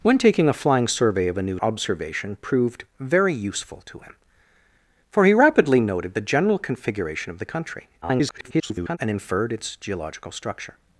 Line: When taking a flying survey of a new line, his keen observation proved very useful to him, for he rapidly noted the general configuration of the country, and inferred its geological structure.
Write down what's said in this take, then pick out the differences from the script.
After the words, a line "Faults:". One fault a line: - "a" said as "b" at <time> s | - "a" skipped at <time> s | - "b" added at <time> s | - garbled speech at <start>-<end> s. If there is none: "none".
When taking a flying survey of a new observation proved very useful to him, for he rapidly noted the general configuration of the country, [garbled] and inferred its geological structure.
Faults:
- "line his keen" skipped at 1.6 s
- garbled speech at 8.0-9.0 s